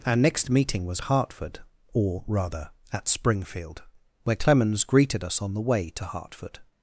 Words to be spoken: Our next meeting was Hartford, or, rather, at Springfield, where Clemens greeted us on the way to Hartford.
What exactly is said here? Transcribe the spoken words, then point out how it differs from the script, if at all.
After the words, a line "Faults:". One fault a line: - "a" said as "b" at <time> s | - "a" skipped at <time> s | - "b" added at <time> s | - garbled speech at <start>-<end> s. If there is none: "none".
Our next meeting was Hartford, or, rather, at Springfield, where Clemens greeted us on the way to Hartford.
Faults:
none